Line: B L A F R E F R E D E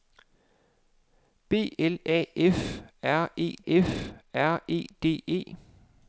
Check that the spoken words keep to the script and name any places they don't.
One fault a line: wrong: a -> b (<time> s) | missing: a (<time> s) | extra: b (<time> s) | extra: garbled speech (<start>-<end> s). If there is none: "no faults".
no faults